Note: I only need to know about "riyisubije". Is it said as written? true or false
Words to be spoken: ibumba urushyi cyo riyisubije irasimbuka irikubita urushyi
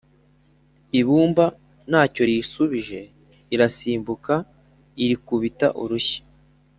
true